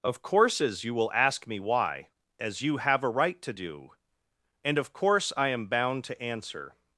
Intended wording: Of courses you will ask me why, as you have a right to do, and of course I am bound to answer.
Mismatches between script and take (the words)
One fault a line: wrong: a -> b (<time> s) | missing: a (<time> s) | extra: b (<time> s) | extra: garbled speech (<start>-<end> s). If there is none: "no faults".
no faults